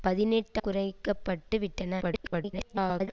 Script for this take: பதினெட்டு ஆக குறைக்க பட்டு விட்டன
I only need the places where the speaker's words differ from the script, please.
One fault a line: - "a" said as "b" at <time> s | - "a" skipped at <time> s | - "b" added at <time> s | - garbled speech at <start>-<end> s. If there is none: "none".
- "ஆக" skipped at 0.6 s
- garbled speech at 2.0-3.1 s